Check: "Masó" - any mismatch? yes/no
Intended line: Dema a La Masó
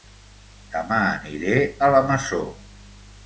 no